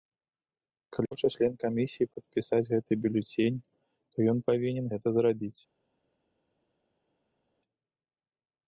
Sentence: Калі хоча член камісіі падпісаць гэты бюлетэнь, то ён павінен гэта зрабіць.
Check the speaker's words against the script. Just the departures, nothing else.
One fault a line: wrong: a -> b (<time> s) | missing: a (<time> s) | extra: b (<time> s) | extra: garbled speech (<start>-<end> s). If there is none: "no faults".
no faults